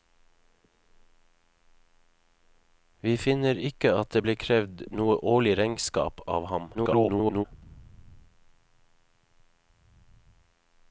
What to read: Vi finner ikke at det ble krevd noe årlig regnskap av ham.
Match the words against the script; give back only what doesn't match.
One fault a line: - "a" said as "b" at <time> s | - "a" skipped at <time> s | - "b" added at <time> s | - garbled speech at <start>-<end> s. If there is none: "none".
- garbled speech at 6.7-7.4 s